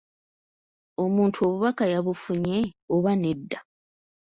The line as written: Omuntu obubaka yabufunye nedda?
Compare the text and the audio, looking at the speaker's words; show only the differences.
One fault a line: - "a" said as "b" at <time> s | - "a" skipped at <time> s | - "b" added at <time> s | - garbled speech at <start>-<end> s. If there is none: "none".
- "oba" added at 3.0 s